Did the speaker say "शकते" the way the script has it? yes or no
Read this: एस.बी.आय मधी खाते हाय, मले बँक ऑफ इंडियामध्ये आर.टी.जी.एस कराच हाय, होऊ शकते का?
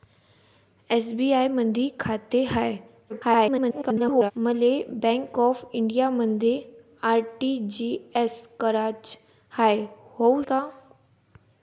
no